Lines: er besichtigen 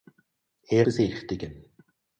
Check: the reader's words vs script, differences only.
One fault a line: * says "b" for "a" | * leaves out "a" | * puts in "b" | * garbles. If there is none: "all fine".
all fine